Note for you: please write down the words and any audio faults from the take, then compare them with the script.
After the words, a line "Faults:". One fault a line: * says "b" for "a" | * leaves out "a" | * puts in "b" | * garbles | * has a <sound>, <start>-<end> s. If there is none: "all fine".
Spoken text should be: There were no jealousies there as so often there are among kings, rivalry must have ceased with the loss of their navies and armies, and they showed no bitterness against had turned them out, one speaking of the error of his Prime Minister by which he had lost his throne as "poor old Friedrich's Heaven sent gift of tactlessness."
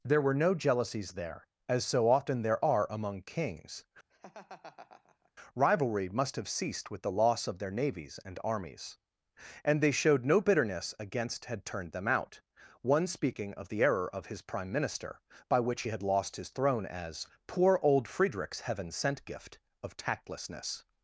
There were no jealousies there as so often there are among kings, rivalry must have ceased with the loss of their navies and armies, and they showed no bitterness against had turned them out, one speaking of the error of his Prime Minister by which he had lost his throne as "poor old Friedrich's Heaven sent gift of tactlessness."
Faults:
* has a laugh, 4.1-5.3 s